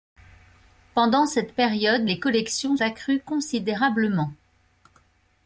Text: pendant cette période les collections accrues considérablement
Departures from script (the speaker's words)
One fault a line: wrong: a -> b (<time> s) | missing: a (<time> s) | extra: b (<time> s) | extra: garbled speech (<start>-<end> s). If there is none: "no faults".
no faults